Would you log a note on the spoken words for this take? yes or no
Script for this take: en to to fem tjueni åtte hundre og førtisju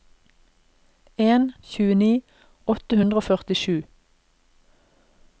yes